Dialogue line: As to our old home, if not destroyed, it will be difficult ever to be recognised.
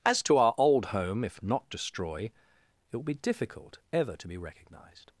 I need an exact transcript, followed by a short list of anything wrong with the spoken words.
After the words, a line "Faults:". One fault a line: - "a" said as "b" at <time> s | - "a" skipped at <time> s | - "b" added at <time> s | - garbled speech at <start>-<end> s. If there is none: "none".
As to our old home, if not destroy, it will be difficult ever to be recognised.
Faults:
- "destroyed" said as "destroy" at 1.7 s